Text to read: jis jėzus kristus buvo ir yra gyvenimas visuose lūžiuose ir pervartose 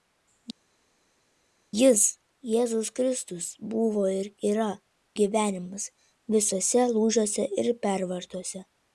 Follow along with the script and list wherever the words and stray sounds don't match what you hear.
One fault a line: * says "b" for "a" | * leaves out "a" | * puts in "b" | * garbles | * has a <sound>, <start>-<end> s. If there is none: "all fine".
all fine